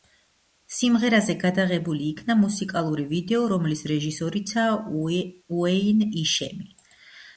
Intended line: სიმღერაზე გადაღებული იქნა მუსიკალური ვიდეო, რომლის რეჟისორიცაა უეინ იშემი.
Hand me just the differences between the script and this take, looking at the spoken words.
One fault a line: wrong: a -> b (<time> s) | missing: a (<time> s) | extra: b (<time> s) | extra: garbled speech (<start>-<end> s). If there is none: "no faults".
no faults